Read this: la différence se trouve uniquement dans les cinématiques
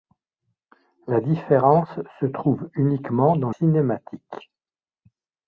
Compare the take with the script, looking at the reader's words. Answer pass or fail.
fail